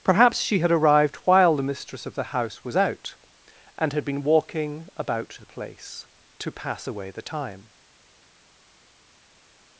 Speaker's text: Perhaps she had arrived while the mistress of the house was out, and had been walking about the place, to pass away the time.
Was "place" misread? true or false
false